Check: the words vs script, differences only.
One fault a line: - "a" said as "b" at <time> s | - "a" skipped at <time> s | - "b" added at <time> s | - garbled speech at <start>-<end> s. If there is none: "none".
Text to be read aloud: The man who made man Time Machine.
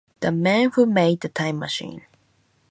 - "man" said as "the" at 1.2 s